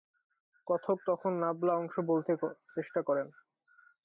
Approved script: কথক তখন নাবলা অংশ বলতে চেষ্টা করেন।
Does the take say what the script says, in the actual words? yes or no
yes